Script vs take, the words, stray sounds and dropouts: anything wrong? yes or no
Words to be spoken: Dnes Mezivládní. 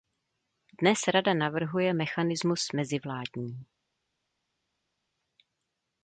yes